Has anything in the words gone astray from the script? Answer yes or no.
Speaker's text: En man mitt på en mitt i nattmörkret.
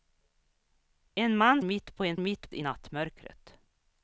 no